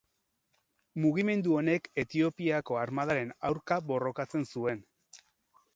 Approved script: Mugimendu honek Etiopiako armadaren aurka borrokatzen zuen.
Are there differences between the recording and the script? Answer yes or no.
no